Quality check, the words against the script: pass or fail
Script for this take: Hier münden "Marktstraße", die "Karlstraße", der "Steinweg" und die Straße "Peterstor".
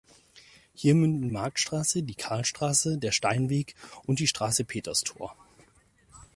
pass